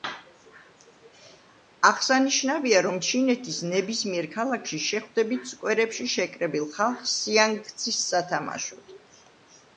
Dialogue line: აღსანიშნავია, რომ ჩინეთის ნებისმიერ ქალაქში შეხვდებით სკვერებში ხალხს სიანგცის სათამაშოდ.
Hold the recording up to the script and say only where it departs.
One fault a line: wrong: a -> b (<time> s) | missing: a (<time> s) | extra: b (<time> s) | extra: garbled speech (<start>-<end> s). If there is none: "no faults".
extra: შეკრებილ (6.1 s)